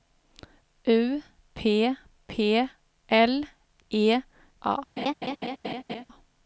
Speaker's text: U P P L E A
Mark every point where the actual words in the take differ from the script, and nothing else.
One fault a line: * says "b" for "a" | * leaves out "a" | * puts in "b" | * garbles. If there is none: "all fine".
all fine